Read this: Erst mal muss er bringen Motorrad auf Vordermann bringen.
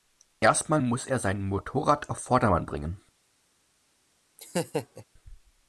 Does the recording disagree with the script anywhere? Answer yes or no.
yes